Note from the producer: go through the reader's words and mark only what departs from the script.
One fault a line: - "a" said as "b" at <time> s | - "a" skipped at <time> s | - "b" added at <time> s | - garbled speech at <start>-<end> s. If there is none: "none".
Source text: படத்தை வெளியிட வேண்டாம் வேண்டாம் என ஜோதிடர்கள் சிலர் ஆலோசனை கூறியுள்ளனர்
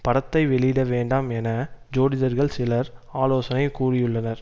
- "வேண்டாம்" skipped at 1.3 s